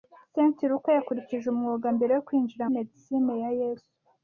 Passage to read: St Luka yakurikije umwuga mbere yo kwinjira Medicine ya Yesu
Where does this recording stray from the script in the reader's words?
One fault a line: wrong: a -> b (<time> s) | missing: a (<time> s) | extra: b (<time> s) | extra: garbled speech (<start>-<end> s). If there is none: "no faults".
no faults